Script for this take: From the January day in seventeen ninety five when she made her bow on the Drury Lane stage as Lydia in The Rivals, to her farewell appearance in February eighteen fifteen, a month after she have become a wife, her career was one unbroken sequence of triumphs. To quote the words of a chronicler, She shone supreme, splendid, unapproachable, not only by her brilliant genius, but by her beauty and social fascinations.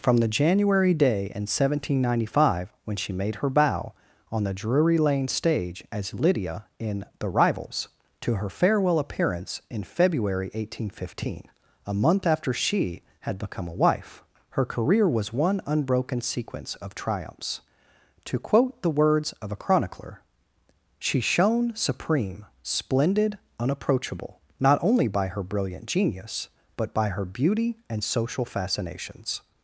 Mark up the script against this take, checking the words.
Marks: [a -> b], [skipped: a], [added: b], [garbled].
From the January day in seventeen ninety five when she made her bow on the Drury Lane stage as Lydia in The Rivals, to her farewell appearance in February eighteen fifteen, a month after she [have -> had] become a wife, her career was one unbroken sequence of triumphs. To quote the words of a chronicler, She shone supreme, splendid, unapproachable, not only by her brilliant genius, but by her beauty and social fascinations.